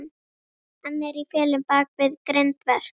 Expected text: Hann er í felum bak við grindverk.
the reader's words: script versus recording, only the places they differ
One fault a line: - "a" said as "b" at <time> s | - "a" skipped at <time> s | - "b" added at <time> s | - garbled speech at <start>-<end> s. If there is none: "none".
none